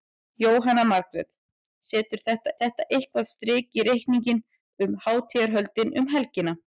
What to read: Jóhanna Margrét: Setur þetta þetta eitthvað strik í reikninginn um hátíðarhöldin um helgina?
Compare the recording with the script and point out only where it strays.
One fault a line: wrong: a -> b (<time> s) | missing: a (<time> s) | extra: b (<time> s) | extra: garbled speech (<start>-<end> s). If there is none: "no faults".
no faults